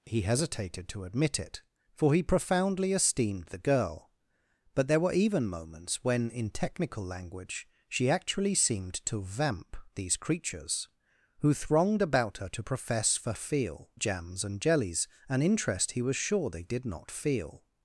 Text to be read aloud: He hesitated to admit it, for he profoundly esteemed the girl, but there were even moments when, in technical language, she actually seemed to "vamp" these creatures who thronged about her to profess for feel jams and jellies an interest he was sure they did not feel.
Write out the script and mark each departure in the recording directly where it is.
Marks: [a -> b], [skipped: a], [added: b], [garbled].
He hesitated to admit it, for he profoundly esteemed the girl, but there were even moments when, in technical language, she actually seemed to "vamp" these creatures who thronged about her to profess for feel jams and jellies an interest he was sure they did not feel.